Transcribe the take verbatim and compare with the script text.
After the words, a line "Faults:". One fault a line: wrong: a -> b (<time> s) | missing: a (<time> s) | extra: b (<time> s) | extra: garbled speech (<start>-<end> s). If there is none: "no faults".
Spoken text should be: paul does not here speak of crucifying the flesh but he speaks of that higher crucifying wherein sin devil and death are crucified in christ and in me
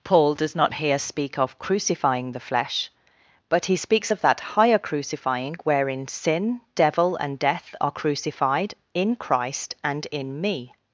paul does not here speak of crucifying the flesh but he speaks of that higher crucifying wherein sin devil and death are crucified in christ and in me
Faults:
no faults